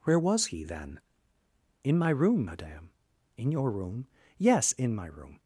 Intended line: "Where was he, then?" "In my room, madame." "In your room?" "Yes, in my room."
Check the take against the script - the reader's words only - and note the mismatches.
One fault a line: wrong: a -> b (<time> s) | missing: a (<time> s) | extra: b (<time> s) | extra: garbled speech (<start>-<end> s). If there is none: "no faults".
no faults